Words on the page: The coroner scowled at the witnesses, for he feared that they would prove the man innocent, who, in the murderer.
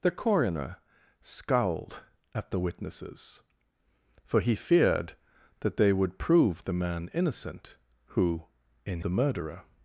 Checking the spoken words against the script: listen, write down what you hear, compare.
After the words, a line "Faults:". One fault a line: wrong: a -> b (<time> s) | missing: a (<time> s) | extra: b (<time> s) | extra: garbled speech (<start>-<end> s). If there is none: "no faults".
The coroner scowled at the witnesses, for he feared that they would prove the man innocent, who, in the murderer.
Faults:
no faults